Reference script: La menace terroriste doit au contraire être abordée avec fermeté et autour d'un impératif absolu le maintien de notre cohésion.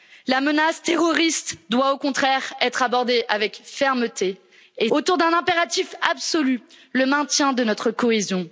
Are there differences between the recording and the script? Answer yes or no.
no